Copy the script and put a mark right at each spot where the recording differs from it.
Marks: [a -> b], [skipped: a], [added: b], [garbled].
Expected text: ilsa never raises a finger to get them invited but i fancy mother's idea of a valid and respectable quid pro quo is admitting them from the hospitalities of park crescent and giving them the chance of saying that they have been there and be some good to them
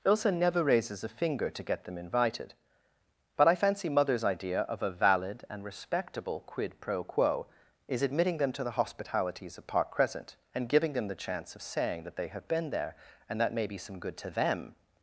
ilsa never raises a finger to get them invited but i fancy mother's idea of a valid and respectable quid pro quo is admitting them [from -> to] the hospitalities of park crescent and giving them the chance of saying that they have been there and [added: that may] be some good to them